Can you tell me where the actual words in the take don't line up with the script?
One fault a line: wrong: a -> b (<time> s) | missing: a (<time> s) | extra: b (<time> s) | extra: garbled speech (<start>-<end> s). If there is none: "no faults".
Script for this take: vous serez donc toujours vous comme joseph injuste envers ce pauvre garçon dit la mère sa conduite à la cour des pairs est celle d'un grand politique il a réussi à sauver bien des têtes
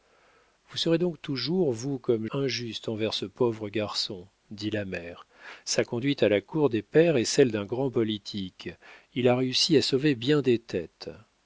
missing: joseph (2.2 s)